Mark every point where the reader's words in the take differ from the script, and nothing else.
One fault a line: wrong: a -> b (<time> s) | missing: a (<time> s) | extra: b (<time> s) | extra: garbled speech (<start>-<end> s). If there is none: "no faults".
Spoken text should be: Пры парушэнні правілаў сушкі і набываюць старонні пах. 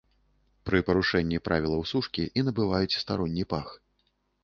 no faults